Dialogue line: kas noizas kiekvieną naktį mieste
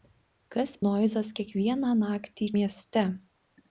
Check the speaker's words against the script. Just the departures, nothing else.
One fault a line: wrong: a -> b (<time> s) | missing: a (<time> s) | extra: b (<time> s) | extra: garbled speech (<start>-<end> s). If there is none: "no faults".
no faults